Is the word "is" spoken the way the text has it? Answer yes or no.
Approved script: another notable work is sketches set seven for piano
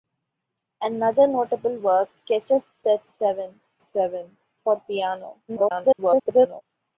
no